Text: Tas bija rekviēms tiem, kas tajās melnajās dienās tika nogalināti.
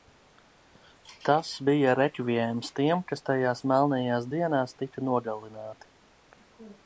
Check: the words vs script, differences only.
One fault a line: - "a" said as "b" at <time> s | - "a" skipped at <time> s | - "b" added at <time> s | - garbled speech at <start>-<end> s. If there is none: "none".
none